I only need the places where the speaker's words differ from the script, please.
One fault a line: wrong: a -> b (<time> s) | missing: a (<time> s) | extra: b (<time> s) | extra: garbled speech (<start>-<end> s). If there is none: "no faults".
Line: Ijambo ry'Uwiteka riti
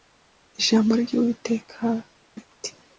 no faults